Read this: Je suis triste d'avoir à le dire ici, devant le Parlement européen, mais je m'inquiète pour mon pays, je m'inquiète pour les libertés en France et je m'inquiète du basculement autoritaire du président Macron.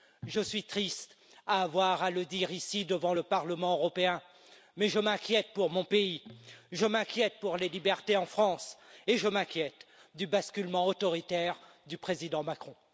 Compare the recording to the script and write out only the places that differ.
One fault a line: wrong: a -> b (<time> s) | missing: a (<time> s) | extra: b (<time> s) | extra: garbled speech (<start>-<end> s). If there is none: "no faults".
no faults